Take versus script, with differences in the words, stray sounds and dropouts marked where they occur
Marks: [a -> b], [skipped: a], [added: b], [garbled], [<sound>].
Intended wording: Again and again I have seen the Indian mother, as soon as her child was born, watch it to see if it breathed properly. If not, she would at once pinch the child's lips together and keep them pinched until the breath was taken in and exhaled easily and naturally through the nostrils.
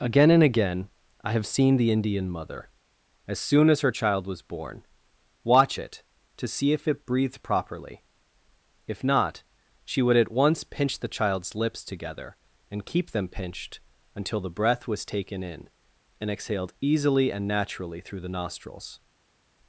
Again and again I have seen the Indian mother, as soon as her child was born, watch it to see if it breathed properly. If not, she would at once pinch the child's lips together and keep them pinched until the breath was taken in and exhaled easily and naturally through the nostrils.